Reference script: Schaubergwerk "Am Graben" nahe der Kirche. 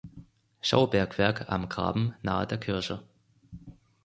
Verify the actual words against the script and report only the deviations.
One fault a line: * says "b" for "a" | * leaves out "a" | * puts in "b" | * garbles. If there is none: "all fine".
all fine